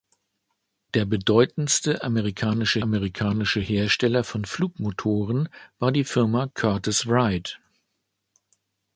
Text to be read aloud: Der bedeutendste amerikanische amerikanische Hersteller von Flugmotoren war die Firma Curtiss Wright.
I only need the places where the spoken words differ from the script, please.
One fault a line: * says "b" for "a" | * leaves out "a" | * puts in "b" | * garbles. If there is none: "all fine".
all fine